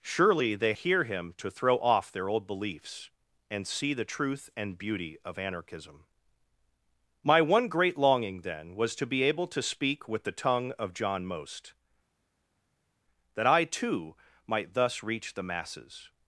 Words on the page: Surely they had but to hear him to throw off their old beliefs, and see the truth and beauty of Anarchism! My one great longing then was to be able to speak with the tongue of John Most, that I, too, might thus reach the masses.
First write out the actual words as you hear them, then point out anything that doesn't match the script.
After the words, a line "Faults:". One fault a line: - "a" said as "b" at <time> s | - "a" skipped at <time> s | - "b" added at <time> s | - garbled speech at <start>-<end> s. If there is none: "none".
Surely they hear him to throw off their old beliefs, and see the truth and beauty of Anarchism! My one great longing then was to be able to speak with the tongue of John Most, that I, too, might thus reach the masses.
Faults:
- "had but to" skipped at 0.7 s